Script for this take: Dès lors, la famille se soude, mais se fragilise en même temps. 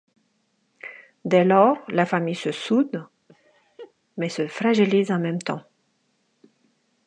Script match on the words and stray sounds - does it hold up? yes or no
no